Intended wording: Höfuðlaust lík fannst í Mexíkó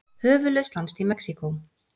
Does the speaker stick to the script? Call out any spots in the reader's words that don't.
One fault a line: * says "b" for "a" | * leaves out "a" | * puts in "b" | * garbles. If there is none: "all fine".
* leaves out "lík"